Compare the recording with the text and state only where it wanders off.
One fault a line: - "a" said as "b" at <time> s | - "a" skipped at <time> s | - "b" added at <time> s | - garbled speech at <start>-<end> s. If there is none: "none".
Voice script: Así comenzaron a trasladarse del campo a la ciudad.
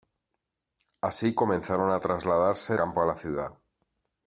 - "del" skipped at 2.8 s